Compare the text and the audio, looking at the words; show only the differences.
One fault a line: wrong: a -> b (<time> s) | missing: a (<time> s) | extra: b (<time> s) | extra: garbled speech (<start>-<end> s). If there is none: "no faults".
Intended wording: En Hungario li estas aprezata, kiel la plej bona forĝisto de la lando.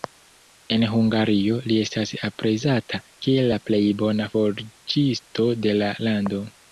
no faults